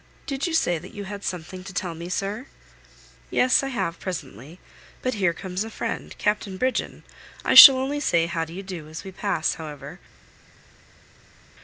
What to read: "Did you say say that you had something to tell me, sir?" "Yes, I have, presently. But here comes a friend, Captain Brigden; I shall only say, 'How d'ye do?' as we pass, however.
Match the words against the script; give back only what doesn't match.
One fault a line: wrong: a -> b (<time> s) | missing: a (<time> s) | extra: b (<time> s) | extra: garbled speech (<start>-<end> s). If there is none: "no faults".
missing: say (0.8 s)